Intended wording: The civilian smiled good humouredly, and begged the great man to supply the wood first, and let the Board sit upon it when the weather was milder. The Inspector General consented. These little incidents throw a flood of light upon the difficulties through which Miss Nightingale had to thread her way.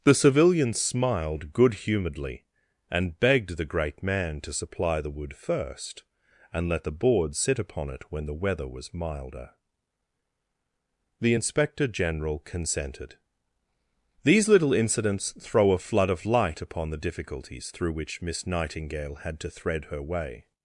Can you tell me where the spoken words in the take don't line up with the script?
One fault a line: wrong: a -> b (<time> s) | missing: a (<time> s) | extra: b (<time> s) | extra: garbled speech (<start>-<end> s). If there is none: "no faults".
no faults